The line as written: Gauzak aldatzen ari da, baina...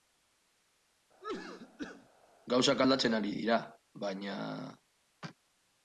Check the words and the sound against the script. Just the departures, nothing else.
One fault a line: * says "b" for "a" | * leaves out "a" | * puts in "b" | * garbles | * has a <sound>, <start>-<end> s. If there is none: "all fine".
* has a cough, 1.2-2.1 s
* says "dira" for "da"